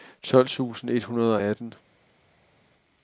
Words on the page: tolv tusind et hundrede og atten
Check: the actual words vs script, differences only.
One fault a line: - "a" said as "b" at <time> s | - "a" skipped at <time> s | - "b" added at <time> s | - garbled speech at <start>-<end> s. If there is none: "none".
none